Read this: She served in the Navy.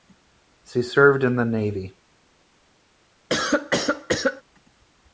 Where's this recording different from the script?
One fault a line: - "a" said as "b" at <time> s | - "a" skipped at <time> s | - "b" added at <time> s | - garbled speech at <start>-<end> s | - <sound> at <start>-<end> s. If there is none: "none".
- cough at 3.3-4.4 s